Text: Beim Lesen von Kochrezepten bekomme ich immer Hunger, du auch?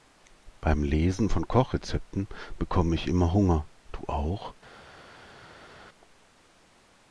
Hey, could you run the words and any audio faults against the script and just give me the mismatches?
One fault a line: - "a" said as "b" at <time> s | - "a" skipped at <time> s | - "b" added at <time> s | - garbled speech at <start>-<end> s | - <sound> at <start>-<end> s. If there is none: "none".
none